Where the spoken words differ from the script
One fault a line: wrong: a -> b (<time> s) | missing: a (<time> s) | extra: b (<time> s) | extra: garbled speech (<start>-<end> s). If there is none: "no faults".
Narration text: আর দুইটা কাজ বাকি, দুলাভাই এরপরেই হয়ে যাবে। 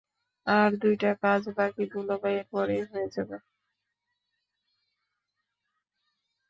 no faults